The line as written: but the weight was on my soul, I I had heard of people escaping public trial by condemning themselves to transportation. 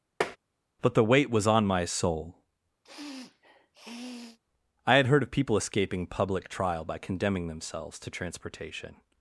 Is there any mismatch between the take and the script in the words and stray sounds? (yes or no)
yes